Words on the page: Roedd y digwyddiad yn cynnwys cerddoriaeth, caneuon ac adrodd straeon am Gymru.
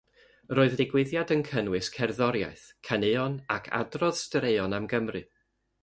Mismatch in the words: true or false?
false